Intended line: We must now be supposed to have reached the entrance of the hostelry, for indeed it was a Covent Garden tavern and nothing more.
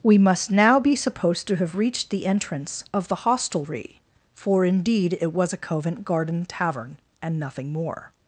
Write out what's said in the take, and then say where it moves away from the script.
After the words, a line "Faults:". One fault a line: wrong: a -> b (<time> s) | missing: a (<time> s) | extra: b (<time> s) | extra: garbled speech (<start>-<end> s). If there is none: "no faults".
We must now be supposed to have reached the entrance of the hostelry, for indeed it was a Covent Garden tavern and nothing more.
Faults:
no faults